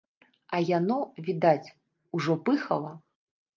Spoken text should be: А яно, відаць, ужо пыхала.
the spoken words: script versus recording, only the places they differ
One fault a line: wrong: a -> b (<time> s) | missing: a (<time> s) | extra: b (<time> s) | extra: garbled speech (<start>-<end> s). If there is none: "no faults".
no faults